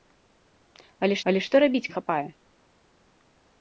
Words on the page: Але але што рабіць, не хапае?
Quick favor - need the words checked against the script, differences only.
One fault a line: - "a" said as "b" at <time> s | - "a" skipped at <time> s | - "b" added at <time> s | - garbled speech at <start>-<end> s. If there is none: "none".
none